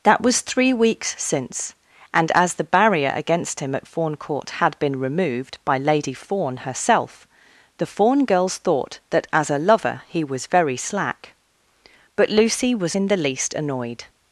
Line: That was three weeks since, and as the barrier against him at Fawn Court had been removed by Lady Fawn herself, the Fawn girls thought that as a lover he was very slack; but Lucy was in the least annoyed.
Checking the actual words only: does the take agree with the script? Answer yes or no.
yes